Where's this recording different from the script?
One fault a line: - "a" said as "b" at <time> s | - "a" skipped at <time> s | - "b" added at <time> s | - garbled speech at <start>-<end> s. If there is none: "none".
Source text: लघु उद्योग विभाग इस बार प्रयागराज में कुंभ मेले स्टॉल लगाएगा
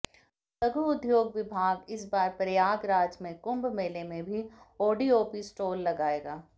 - "में भी ओडीओपी" added at 4.0 s